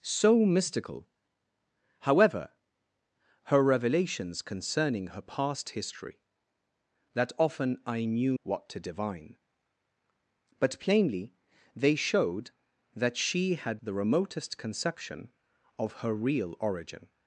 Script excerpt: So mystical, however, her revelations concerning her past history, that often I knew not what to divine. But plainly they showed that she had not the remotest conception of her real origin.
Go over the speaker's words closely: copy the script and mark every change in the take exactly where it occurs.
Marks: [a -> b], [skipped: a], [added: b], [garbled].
So mystical, however, her revelations concerning her past history, that often I knew [skipped: not] what to divine. But plainly they showed that she had [skipped: not] the remotest conception of her real origin.